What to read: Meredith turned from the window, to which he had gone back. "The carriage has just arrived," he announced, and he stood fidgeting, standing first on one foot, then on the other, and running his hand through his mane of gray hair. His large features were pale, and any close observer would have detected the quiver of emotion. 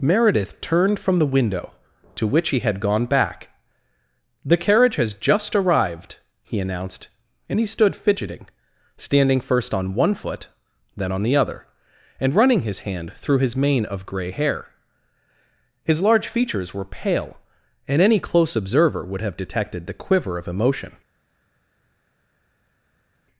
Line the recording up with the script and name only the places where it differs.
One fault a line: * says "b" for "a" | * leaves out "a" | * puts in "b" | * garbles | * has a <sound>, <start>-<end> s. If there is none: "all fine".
all fine